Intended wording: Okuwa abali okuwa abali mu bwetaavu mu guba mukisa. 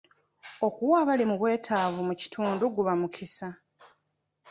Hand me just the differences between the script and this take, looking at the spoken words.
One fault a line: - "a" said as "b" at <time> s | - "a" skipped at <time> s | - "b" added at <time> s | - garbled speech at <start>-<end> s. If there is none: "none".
- "okuwa abali" skipped at 1.2 s
- "kitundu" added at 2.2 s